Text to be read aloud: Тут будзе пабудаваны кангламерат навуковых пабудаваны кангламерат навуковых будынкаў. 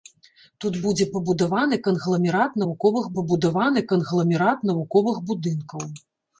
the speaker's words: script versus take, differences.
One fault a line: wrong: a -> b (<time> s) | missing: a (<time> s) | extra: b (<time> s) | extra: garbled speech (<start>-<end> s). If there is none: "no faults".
no faults